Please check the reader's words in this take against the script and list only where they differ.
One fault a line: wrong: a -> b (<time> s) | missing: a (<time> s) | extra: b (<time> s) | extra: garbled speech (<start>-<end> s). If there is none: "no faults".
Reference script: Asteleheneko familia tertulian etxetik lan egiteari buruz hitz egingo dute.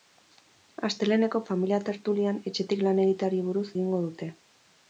missing: hitz (3.7 s)